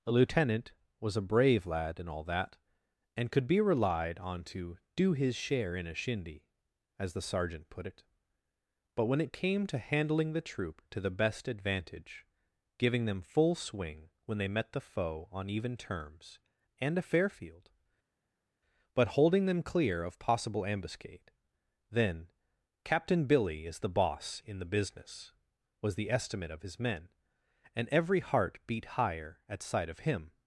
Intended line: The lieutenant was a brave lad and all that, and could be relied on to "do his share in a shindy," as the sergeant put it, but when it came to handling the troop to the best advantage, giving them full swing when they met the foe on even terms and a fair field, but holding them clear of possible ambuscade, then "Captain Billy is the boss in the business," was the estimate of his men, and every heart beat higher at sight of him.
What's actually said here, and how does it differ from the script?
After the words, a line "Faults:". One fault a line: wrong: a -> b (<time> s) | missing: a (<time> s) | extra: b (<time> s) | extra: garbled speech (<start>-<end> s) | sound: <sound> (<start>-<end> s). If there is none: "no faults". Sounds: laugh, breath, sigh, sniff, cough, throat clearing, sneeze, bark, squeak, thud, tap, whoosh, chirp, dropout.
A lieutenant was a brave lad and all that, and could be relied on to "do his share in a shindy," as the sergeant put it, but when it came to handling the troop to the best advantage, giving them full swing when they met the foe on even terms and a fair field, but holding them clear of possible ambuscade, then "Captain Billy is the boss in the business," was the estimate of his men, and every heart beat higher at sight of him.
Faults:
wrong: The -> A (0.1 s)